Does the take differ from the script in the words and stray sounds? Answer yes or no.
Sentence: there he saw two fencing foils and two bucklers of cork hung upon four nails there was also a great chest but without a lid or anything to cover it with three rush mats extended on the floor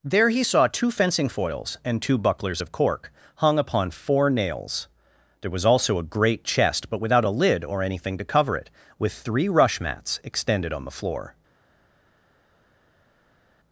no